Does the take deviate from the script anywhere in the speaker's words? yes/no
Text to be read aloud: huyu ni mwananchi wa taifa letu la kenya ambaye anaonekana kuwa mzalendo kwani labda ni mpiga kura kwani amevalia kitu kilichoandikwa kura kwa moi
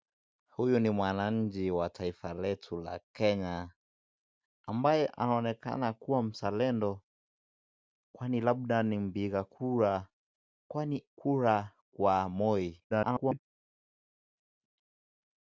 yes